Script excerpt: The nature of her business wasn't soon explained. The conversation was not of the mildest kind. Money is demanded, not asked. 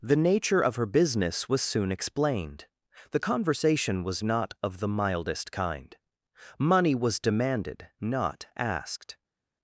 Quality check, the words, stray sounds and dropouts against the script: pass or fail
fail